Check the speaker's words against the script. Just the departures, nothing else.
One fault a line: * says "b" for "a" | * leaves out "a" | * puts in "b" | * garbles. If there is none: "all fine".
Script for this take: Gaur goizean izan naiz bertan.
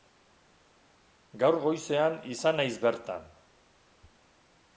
all fine